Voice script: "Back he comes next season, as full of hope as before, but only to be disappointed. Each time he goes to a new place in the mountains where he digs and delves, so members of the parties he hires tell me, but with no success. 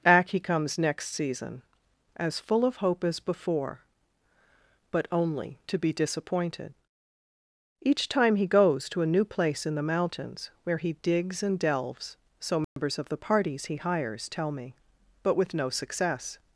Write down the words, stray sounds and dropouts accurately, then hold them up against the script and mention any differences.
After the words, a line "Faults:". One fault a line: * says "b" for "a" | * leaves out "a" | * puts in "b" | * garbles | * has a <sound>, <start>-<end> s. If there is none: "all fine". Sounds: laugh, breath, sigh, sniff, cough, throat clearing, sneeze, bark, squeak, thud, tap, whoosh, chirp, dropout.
"Back he comes next season, as full of hope as before, but only to be disappointed. Each time he goes to a new place in the mountains where he digs and delves, so members of the parties he hires tell me, but with no success.
Faults:
* has a dropout, 12.6-12.8 s